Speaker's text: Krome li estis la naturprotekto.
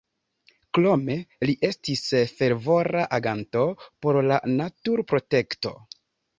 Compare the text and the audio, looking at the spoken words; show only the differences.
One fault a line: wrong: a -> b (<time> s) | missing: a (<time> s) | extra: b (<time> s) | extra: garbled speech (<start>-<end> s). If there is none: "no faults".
extra: fervora aganto por (2.4 s)